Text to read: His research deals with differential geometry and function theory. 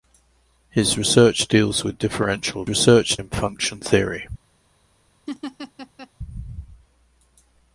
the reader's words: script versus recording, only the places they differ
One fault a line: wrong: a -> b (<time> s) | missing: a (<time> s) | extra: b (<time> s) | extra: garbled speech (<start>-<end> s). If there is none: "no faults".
wrong: geometry -> research (2.7 s)